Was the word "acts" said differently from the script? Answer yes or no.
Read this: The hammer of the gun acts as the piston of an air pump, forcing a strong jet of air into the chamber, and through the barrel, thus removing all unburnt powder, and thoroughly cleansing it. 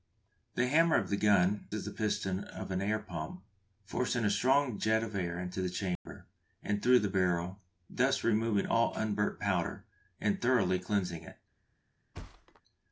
yes